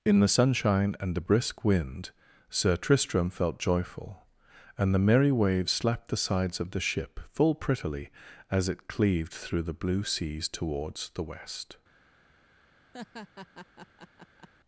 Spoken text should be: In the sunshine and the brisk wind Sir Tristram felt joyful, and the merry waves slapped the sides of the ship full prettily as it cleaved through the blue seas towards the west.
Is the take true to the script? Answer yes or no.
yes